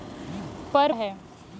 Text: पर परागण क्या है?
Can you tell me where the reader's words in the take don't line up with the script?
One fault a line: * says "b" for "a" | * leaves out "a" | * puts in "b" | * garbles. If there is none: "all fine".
* leaves out "परागण क्या"